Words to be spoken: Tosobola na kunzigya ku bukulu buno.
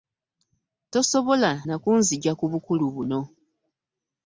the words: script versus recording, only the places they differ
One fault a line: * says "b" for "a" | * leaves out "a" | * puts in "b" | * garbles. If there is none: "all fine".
all fine